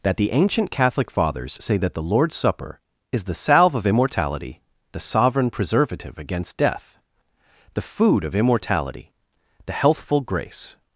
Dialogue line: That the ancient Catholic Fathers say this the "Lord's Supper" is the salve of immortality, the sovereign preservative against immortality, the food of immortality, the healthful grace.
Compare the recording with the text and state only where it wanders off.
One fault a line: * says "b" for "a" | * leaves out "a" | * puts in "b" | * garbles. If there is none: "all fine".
* says "that" for "this"
* says "death" for "immortality"